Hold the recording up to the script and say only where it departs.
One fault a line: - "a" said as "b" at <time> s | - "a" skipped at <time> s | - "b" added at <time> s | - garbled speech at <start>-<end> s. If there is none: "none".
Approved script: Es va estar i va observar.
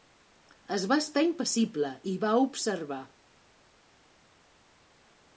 - "impassible" added at 1.2 s